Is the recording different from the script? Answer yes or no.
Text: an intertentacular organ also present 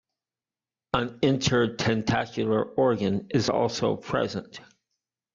yes